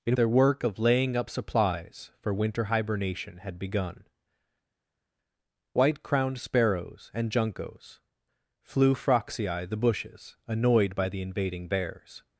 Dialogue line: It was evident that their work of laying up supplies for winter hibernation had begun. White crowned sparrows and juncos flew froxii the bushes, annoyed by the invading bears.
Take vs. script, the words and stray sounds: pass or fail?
fail